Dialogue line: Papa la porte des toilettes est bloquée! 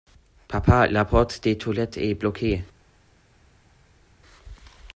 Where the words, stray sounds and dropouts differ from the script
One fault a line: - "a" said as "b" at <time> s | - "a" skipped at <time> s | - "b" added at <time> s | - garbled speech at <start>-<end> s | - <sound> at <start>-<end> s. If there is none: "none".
none